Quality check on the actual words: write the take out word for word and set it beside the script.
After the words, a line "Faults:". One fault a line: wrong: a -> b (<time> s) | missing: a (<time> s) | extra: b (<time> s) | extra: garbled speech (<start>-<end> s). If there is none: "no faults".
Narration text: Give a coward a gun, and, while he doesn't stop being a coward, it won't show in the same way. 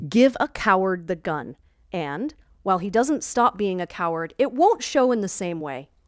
Give a coward the gun, and, while he doesn't stop being a coward, it won't show in the same way.
Faults:
wrong: a -> the (1.1 s)